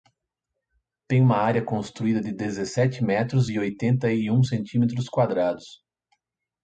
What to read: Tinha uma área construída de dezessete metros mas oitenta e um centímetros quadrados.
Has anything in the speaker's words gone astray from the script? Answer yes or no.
yes